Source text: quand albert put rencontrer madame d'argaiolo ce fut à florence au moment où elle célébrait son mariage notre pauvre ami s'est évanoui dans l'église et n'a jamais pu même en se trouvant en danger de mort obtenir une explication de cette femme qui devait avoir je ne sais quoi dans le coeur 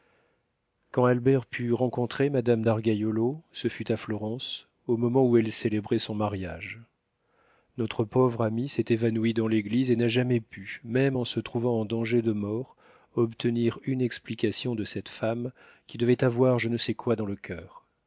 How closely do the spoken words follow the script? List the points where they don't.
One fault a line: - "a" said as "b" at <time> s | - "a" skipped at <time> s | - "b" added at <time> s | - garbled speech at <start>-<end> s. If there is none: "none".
none